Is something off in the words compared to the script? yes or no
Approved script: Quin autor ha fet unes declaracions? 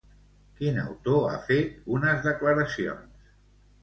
no